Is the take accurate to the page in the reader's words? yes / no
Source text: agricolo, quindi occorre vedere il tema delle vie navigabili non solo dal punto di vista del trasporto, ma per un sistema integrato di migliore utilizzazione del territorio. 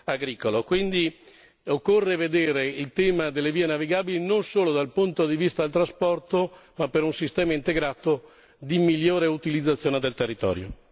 yes